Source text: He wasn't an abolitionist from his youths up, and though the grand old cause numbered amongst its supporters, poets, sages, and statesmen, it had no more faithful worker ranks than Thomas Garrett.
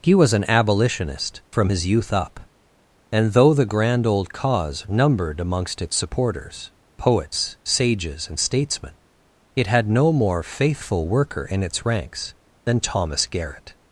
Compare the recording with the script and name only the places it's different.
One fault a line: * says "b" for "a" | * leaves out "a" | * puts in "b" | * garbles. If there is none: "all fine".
* says "was" for "wasn't"
* says "youth" for "youths"
* puts in "in its"